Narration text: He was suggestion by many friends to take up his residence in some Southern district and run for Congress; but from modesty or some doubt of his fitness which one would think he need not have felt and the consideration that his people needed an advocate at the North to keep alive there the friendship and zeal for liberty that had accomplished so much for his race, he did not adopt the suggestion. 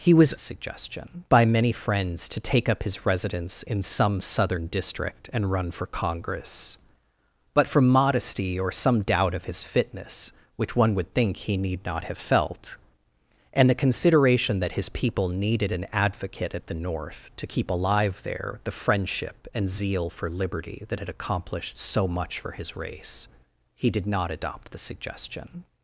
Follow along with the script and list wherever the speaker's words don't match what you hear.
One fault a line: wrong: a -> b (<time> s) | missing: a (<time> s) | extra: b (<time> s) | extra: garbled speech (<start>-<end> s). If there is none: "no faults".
no faults